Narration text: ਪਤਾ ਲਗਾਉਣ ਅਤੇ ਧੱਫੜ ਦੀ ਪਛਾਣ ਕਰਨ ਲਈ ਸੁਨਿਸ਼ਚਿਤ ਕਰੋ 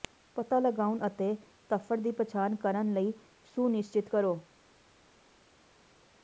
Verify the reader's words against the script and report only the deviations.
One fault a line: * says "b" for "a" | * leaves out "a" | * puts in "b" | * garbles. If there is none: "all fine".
all fine